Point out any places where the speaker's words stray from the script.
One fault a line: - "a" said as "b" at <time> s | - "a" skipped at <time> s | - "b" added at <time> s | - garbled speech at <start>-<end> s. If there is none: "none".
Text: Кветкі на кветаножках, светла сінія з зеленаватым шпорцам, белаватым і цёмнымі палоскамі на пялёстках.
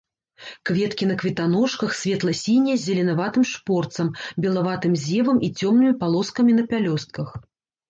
- "зевам" added at 5.1 s